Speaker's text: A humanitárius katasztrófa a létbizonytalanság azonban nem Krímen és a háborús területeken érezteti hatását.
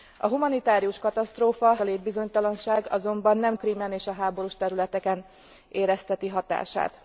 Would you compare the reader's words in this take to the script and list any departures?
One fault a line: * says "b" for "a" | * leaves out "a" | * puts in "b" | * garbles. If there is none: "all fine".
all fine